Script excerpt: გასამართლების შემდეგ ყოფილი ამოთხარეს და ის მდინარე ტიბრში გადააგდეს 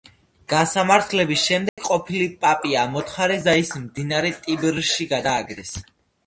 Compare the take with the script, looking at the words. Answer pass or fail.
fail